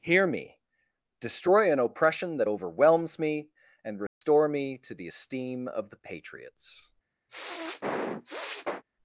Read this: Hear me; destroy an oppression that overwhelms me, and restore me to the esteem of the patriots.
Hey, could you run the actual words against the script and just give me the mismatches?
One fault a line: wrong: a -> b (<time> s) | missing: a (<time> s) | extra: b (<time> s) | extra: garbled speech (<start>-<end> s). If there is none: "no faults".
no faults